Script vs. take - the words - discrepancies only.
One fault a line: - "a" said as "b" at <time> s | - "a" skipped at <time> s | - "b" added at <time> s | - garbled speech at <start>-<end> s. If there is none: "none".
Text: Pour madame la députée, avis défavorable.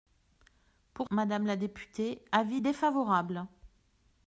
none